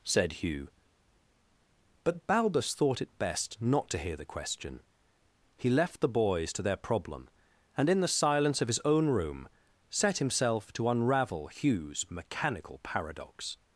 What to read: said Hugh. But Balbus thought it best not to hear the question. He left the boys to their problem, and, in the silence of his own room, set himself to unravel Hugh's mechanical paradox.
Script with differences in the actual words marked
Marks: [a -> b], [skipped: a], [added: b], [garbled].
said Hugh. But Balbus thought it best not to hear the question. He left the boys to their problem, and, in the silence of his own room, set himself to unravel Hugh's mechanical paradox.